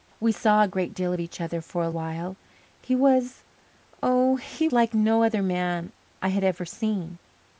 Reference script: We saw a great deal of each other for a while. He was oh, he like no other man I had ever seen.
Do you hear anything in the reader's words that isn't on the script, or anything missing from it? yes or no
no